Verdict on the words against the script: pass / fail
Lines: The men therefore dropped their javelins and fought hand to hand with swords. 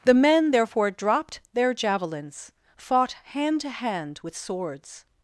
fail